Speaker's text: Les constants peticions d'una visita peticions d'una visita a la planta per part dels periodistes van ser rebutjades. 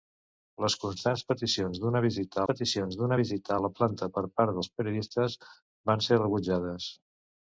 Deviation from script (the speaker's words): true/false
false